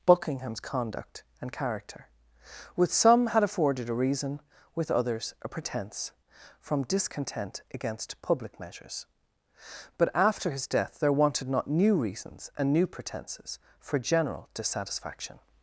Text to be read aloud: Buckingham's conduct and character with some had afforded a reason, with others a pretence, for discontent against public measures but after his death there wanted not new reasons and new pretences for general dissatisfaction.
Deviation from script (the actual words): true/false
true